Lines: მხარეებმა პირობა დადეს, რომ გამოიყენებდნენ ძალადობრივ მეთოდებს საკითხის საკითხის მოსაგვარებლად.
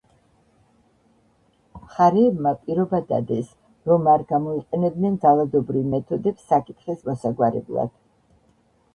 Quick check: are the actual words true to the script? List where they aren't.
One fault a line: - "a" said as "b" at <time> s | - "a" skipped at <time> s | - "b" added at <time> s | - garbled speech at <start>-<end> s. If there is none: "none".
- "არ" added at 4.1 s
- "საკითხის" skipped at 7.0 s